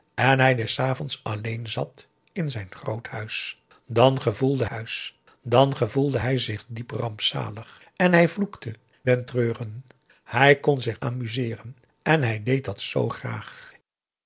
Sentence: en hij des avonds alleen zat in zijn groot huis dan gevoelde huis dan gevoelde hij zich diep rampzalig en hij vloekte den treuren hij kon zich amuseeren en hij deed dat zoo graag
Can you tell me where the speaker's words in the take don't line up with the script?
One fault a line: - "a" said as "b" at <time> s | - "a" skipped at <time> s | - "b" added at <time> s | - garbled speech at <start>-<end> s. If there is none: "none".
none